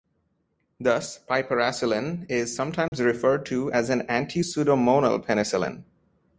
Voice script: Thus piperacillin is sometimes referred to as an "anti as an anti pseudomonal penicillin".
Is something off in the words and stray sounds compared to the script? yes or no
yes